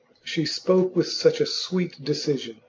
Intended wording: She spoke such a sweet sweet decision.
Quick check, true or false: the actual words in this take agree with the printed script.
false